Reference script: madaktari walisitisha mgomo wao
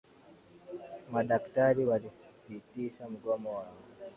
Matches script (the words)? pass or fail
pass